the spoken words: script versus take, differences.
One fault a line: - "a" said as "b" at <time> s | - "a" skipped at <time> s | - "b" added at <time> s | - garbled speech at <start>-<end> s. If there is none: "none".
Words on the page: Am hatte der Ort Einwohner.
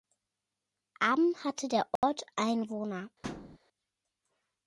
none